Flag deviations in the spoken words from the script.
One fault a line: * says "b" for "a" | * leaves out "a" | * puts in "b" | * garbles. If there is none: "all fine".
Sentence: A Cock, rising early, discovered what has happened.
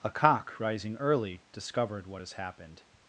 all fine